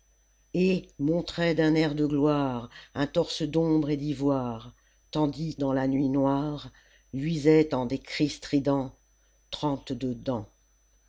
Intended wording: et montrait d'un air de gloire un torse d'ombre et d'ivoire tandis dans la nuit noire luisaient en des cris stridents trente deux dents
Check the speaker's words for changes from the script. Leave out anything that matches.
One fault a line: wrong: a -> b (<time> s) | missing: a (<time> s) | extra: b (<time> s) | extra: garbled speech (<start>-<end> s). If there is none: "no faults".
no faults